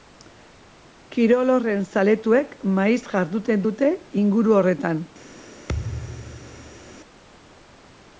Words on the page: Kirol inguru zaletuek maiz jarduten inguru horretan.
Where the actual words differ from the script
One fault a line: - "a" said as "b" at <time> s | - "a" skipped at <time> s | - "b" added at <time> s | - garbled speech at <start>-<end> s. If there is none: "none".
- "inguru" said as "horren" at 1.6 s
- "dute" added at 3.7 s